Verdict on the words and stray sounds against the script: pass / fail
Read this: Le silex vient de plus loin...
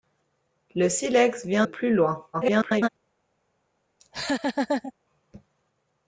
fail